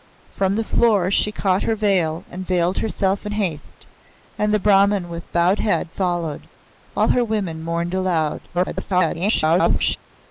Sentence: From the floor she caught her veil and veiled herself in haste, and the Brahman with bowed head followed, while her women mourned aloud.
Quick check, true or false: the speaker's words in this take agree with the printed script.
false